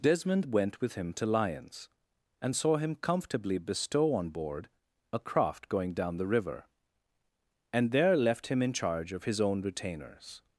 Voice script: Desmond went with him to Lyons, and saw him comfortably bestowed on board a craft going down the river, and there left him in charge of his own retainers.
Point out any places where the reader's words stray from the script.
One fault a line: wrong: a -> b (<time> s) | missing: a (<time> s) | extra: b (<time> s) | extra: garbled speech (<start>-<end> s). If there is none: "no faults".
wrong: bestowed -> bestow (3.6 s)